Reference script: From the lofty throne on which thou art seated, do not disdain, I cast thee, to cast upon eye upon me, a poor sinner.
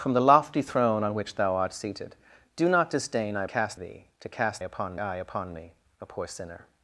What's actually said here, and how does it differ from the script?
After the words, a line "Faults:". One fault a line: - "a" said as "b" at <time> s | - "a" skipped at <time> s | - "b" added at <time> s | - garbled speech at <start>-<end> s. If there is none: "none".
From the lofty throne on which thou art seated, do not disdain, I cast thee, to cast upon eye upon me, a poor sinner.
Faults:
none